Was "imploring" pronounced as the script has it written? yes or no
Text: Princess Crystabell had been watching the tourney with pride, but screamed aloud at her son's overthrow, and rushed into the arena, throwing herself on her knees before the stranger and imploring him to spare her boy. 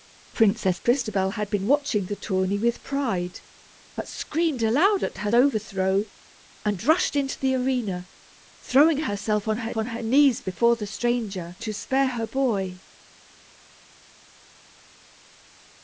no